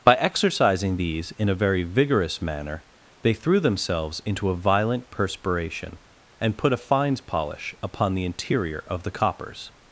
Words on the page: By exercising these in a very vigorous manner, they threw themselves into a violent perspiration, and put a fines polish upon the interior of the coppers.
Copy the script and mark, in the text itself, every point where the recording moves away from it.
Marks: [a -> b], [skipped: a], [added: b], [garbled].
By exercising these in a very vigorous manner, they threw themselves into a violent perspiration, and put a fines polish upon the interior of the coppers.